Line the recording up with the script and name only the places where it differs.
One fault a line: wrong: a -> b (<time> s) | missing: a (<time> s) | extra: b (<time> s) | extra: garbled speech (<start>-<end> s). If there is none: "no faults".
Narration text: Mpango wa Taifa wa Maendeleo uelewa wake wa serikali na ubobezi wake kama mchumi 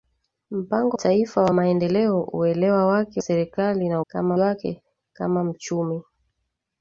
missing: wa (1.0 s)
missing: wa (3.2 s)
wrong: ubobezi -> kama (4.1 s)